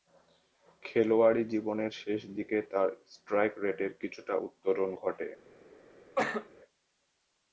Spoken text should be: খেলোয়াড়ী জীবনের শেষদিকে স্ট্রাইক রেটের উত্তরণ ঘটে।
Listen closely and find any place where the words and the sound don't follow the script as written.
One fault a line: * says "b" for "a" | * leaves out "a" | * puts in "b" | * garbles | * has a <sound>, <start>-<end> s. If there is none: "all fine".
* puts in "তার"
* puts in "কিছুটা"
* has a cough, 6.2-6.5 s